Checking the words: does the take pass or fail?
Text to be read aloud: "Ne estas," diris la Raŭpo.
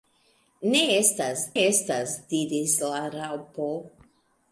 fail